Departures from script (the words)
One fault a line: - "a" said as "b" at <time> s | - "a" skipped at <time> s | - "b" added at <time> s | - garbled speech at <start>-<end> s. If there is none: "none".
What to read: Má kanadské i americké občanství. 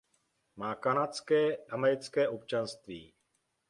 - "i" skipped at 1.5 s